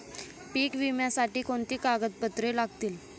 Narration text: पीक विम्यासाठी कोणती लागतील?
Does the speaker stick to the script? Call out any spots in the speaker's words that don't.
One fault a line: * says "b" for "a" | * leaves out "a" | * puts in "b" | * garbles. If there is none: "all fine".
* puts in "कागदपत्रे"